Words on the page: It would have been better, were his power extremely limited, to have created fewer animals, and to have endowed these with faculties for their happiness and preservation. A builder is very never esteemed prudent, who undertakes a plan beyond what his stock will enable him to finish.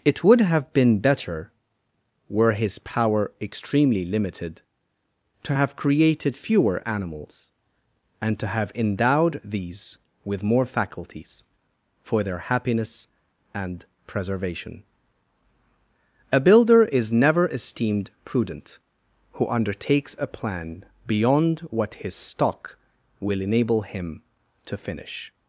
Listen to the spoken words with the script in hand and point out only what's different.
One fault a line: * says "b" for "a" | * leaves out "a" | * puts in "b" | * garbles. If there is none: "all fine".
* puts in "more"
* leaves out "very"